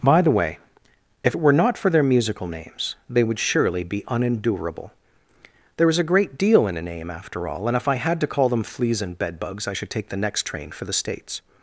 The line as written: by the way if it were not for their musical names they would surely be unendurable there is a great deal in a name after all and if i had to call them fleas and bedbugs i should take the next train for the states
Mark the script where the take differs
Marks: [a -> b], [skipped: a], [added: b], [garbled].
by the way if it were not for their musical names they would surely be unendurable there is a great deal in a name after all and if i had to call them fleas and bedbugs i should take the next train for the states